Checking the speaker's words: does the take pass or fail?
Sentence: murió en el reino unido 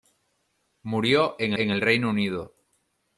fail